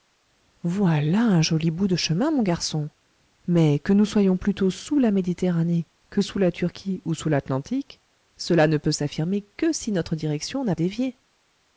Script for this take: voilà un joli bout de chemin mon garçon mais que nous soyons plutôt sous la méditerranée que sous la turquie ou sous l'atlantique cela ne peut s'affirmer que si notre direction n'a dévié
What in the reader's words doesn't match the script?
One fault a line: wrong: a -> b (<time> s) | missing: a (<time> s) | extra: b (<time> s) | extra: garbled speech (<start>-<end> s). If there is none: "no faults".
no faults